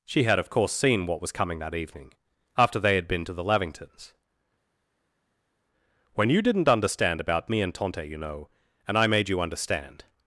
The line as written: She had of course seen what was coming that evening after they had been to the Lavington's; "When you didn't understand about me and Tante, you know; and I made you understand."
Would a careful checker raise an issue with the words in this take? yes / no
no